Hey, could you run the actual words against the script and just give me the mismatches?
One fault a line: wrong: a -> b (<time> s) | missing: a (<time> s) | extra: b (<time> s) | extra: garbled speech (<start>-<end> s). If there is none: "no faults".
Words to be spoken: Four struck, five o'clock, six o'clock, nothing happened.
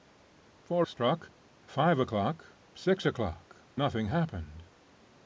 no faults